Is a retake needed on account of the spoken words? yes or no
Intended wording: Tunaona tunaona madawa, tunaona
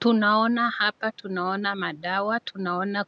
yes